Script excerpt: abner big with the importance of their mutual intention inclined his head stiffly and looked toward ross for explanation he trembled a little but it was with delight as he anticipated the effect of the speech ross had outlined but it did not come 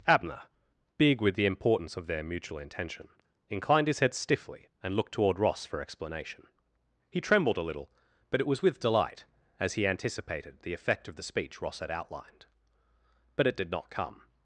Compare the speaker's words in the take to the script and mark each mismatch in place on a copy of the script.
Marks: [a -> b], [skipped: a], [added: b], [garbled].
abner big with the importance of their mutual intention inclined his head stiffly and looked toward ross for explanation he trembled a little but it was with delight as he anticipated the effect of the speech ross had outlined but it did not come